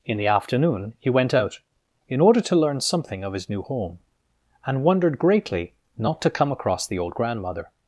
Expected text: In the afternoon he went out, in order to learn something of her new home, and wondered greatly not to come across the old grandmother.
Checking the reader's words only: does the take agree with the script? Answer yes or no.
no